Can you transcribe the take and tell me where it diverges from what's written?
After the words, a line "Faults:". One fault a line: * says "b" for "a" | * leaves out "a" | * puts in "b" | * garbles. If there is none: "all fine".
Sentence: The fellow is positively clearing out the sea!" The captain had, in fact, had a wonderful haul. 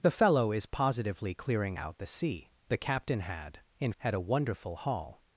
The fellow is positively clearing out the sea!" The captain had, in had a wonderful haul.
Faults:
* leaves out "fact"